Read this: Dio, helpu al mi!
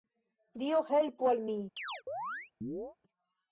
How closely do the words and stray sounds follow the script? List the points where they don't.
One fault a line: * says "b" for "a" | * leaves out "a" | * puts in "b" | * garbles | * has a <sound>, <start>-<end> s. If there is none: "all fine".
* has a chirp, 1.8-3.0 s